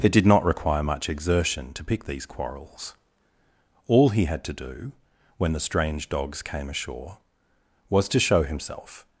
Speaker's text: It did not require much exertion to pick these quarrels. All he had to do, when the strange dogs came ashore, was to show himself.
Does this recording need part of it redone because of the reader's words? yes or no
no